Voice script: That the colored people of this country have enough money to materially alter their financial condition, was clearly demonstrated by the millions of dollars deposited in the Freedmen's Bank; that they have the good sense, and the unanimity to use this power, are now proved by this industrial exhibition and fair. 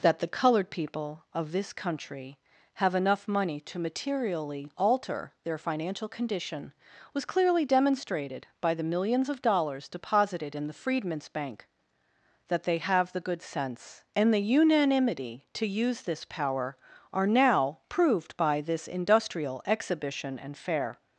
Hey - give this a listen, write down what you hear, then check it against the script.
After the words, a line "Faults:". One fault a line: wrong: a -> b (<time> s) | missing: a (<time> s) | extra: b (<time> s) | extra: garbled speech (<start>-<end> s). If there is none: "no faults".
That the colored people of this country have enough money to materially alter their financial condition, was clearly demonstrated by the millions of dollars deposited in the Freedmen's Bank; that they have the good sense, and the unanimity to use this power, are now proved by this industrial exhibition and fair.
Faults:
no faults